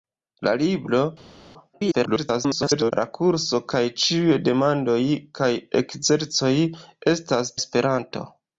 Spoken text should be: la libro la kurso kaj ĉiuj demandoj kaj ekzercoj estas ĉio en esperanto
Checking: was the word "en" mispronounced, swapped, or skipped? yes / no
yes